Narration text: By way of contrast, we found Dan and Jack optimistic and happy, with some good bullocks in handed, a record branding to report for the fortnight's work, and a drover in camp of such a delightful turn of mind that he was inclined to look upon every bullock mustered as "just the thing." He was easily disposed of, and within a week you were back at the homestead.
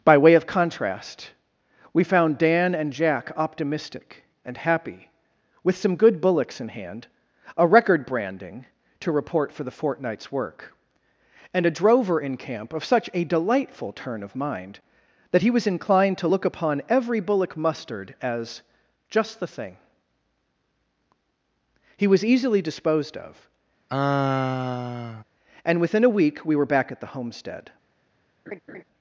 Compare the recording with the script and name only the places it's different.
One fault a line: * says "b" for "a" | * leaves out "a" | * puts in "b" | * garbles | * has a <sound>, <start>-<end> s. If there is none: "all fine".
* says "hand" for "handed"
* has a sigh, 23.9-25.2 s
* says "we" for "you"
* has a laugh, 28.5-28.8 s